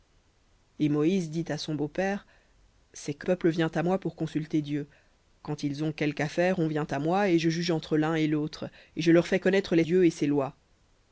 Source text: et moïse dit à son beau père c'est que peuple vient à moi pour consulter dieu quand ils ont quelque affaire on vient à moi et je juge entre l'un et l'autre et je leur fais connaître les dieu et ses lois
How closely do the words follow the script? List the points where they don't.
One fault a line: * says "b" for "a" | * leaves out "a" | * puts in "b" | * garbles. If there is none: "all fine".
all fine